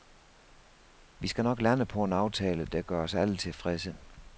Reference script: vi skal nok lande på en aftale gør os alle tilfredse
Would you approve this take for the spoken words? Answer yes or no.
no